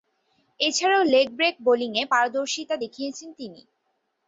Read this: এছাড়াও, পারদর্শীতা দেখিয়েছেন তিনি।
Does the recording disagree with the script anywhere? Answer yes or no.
yes